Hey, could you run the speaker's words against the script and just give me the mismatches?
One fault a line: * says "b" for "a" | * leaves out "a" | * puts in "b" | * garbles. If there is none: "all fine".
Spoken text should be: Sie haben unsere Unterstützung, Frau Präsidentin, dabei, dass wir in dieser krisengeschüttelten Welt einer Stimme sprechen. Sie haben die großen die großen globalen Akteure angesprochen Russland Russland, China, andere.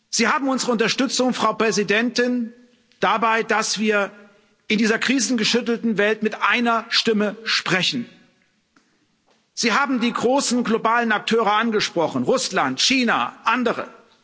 * puts in "mit"
* leaves out "die großen"
* leaves out "Russland"